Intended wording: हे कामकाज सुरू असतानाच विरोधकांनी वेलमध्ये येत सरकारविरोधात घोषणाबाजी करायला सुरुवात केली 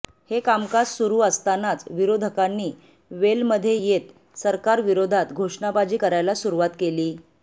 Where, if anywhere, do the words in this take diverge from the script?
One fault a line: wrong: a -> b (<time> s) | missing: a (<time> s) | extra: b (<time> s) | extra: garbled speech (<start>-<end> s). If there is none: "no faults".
no faults